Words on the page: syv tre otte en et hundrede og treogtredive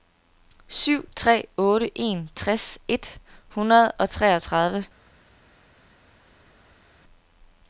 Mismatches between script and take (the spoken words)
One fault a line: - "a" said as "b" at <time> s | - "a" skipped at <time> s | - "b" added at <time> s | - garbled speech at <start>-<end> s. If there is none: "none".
- "tres" added at 2.4 s